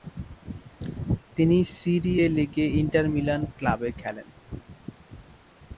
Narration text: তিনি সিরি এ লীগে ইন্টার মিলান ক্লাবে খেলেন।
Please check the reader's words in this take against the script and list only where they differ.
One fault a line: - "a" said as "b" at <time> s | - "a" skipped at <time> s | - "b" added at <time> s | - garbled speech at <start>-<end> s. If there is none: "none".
none